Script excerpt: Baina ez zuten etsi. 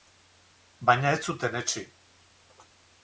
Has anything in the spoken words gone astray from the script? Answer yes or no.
no